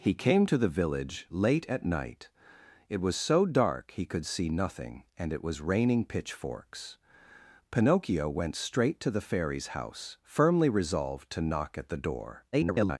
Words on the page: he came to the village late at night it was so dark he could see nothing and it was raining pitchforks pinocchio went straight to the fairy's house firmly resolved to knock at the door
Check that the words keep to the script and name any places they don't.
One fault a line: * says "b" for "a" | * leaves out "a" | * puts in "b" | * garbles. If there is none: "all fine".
* garbles